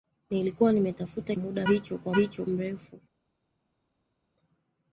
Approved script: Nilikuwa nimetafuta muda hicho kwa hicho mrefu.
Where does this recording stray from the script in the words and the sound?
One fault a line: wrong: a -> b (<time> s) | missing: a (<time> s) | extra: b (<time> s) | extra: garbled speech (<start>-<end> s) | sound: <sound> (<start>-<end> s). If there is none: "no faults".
no faults